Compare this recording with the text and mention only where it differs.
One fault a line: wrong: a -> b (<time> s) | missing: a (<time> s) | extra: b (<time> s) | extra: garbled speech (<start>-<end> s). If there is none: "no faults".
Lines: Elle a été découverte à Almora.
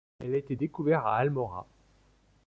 no faults